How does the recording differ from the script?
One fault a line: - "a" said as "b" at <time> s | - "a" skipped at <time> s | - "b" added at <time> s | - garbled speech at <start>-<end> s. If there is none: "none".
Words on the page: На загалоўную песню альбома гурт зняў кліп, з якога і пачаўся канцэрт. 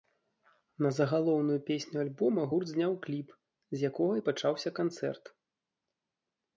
none